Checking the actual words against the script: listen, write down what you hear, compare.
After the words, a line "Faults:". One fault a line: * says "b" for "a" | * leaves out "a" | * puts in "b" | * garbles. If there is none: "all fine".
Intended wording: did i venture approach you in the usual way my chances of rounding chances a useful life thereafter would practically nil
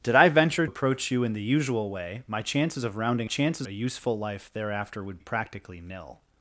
did i venture approach you in the usual way my chances of rounding chances a useful life thereafter would practically nil
Faults:
all fine